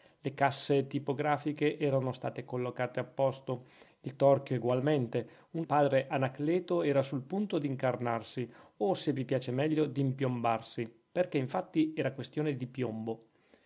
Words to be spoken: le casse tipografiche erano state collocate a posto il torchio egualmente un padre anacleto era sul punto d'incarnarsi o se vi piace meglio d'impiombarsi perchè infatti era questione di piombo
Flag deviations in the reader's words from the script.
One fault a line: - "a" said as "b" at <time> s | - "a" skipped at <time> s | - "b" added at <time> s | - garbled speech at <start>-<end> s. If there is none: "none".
none